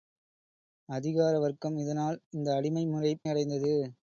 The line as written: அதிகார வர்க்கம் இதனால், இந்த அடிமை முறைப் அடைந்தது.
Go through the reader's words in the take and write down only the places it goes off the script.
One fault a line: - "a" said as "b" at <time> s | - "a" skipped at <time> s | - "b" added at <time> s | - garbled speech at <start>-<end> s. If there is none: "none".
none